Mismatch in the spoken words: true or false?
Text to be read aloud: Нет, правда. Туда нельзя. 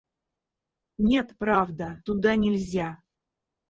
false